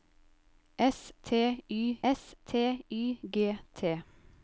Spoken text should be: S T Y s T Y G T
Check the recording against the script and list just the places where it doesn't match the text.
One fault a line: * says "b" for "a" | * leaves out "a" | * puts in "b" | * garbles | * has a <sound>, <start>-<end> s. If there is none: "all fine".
all fine